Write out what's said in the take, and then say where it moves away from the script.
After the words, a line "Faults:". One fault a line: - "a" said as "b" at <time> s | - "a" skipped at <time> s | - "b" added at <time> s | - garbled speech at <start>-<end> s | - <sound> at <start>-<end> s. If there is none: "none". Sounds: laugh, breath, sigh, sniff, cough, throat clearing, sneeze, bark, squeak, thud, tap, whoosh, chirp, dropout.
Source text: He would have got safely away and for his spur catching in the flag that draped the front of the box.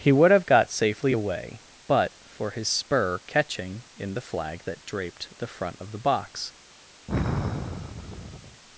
He would have got safely away but for his spur catching in the flag that draped the front of the box.
Faults:
- "and" said as "but" at 1.9 s
- sigh at 7.1-8.6 s